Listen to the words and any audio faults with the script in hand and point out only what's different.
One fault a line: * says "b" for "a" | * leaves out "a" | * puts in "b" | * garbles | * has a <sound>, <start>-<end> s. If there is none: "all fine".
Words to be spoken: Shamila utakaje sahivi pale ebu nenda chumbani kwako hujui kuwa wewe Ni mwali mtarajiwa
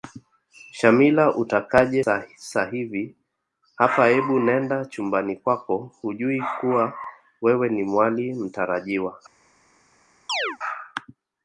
* says "hapa" for "pale"
* has a chirp, 10.3-10.6 s